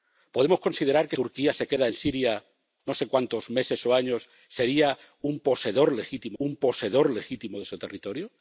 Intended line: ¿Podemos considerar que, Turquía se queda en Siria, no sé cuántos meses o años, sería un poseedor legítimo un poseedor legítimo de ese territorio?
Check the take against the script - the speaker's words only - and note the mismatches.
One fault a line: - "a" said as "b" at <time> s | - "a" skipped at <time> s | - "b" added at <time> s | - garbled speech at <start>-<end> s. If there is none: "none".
none